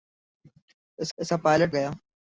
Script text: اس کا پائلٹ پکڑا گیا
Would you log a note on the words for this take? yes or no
yes